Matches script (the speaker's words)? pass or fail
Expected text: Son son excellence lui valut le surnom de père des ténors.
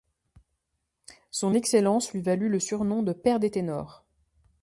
fail